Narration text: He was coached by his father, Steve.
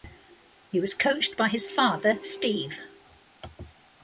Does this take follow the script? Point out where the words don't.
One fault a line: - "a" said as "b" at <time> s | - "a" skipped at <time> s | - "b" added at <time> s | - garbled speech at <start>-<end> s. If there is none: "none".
none